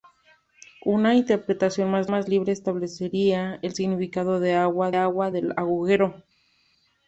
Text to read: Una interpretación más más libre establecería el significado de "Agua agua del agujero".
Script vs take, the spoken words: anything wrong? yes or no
no